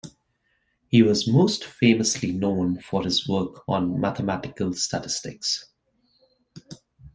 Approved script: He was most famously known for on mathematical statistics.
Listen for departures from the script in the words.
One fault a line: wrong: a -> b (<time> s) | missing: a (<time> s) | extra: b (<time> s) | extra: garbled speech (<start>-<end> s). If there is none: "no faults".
extra: his work (3.0 s)